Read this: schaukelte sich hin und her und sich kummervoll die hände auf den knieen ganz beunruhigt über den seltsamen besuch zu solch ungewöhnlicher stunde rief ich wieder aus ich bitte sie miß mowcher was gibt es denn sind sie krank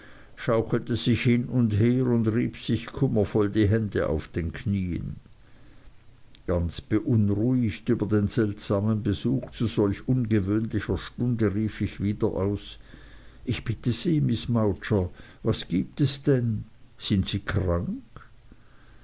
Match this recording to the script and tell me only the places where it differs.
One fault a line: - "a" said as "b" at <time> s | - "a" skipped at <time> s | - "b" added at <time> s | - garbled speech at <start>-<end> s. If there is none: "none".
- "rieb" added at 2.3 s